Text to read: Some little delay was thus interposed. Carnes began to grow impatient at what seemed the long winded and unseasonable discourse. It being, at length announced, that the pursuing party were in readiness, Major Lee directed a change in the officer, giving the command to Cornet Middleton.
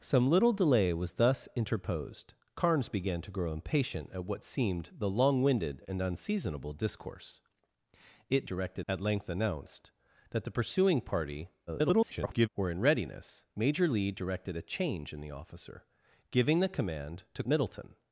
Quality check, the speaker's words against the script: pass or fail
fail